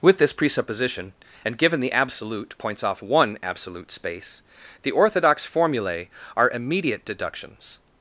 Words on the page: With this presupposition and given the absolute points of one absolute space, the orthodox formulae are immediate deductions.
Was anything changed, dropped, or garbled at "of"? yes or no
yes